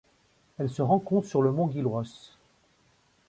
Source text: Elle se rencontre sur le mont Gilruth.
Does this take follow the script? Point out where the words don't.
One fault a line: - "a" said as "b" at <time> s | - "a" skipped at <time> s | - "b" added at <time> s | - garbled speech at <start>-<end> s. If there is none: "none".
none